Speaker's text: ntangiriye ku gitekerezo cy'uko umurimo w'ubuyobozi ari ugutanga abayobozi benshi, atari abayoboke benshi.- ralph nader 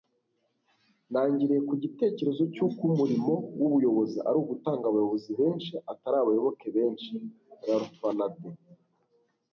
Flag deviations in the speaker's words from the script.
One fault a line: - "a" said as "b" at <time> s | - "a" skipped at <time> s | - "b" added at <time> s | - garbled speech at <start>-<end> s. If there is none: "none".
none